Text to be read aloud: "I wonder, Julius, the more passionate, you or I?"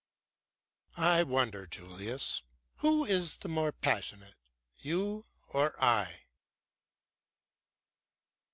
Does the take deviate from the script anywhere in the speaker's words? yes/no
yes